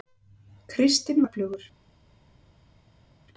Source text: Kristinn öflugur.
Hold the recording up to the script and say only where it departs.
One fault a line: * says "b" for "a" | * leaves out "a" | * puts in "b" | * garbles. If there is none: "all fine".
all fine